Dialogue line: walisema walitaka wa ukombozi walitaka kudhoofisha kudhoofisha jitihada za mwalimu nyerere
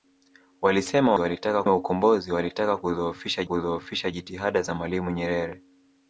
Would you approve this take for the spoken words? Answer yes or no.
yes